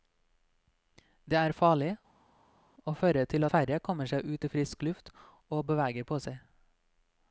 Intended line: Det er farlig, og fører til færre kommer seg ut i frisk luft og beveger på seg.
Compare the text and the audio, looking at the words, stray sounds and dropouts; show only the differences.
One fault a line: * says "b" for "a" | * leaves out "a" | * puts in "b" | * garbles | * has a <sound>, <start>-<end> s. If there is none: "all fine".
all fine